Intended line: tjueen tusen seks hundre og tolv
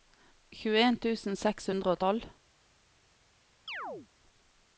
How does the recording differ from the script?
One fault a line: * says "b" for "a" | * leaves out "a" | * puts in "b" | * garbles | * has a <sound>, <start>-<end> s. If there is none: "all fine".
* has a chirp, 3.7-4.1 s